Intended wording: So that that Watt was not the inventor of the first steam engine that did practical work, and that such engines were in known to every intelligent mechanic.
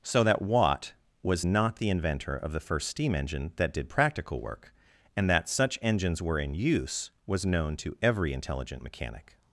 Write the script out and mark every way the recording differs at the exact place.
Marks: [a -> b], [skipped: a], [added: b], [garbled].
So that [skipped: that] Watt was not the inventor of the first steam engine that did practical work, and that such engines were in [added: use was] known to every intelligent mechanic.